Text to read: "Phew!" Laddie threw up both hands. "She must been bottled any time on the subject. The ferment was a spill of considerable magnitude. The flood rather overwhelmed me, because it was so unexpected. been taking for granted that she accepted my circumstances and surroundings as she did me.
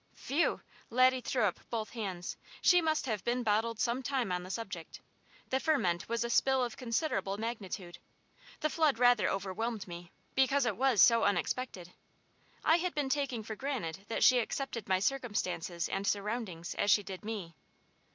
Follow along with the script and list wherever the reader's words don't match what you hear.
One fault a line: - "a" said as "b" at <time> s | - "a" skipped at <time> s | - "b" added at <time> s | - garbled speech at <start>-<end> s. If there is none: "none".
- "have" added at 3.0 s
- "any" said as "some" at 3.8 s
- "I had" added at 12.7 s